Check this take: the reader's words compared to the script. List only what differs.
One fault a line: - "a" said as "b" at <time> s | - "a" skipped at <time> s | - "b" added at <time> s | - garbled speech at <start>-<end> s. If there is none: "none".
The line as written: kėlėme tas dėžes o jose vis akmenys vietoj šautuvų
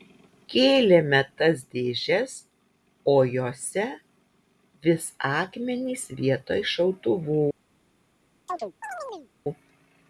none